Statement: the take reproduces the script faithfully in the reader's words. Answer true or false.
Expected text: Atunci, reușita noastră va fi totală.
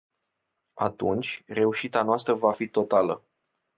true